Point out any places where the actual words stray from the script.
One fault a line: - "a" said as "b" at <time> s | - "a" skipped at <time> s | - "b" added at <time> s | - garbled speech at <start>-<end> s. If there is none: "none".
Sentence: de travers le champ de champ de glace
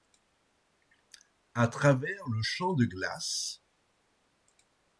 - "de" said as "à" at 1.5 s
- "champ de" skipped at 2.8 s